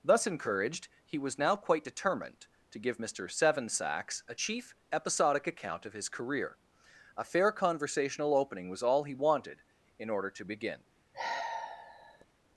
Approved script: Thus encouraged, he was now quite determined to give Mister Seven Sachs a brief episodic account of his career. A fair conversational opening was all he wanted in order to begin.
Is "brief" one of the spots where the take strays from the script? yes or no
yes